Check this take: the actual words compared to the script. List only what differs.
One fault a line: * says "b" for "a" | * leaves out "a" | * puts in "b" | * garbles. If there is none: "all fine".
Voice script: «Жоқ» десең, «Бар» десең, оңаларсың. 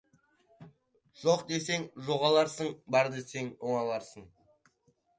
* puts in "жоғаларсың"